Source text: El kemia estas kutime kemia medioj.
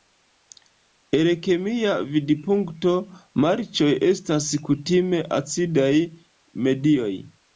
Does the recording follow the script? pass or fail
fail